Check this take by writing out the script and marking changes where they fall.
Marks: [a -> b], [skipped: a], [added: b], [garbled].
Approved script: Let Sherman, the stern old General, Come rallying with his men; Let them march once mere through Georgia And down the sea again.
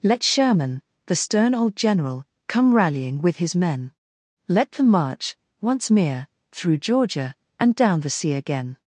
Let Sherman, the stern old General, Come rallying with his men; Let them march once mere through Georgia And down the sea again.